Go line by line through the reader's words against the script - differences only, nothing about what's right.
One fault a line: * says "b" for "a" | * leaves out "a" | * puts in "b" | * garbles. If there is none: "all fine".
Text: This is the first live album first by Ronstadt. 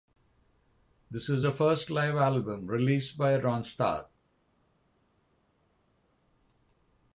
* says "released" for "first"